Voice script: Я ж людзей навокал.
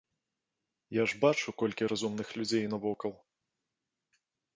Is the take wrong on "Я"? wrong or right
right